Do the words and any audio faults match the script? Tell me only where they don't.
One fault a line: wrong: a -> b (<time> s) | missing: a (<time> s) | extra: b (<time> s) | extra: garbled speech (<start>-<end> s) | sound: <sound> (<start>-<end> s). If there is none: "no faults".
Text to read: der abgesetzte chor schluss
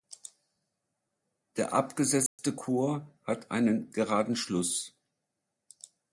sound: dropout (2.3-2.4 s)
extra: hat einen geraden (3.2 s)